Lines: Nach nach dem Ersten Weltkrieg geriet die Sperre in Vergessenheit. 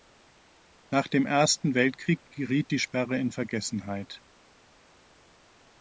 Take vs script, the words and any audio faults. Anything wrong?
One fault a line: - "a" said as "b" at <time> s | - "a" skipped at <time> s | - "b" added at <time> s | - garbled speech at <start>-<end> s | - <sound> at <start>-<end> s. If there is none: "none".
- "nach" skipped at 1.1 s